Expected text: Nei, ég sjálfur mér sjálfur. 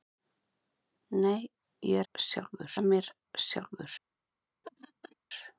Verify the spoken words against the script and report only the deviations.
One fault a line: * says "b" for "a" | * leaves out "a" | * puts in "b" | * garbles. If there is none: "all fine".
all fine